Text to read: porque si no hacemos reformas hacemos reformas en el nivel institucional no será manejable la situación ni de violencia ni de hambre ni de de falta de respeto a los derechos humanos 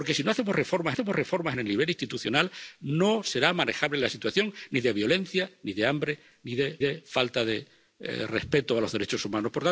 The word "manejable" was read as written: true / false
true